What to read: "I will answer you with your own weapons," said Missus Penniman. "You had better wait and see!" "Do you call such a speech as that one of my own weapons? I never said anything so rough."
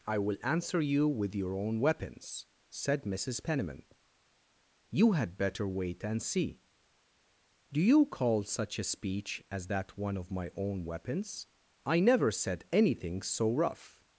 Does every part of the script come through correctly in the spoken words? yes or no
yes